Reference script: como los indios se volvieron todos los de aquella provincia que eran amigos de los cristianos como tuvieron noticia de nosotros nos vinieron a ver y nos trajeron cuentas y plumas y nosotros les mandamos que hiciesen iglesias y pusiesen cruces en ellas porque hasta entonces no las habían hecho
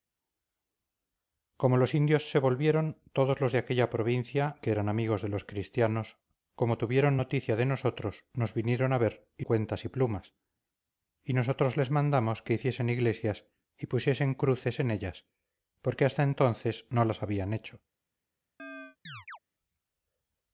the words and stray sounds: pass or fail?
fail